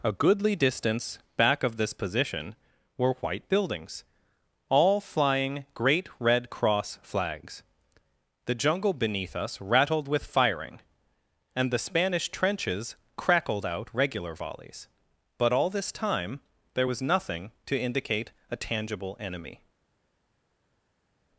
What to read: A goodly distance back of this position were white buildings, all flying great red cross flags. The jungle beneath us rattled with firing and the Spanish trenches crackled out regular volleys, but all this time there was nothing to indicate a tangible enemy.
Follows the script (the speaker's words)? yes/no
yes